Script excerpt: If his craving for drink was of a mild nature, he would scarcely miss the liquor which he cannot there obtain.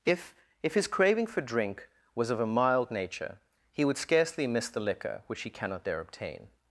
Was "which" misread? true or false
false